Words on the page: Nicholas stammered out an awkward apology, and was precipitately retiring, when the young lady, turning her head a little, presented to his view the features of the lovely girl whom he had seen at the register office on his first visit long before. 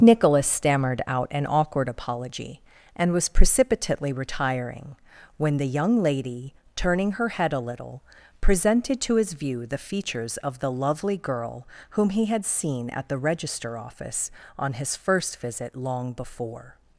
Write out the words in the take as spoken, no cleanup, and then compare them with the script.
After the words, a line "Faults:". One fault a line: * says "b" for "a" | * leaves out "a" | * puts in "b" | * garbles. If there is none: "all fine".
Nicholas stammered out an awkward apology, and was precipitately retiring, when the young lady, turning her head a little, presented to his view the features of the lovely girl whom he had seen at the register office on his first visit long before.
Faults:
all fine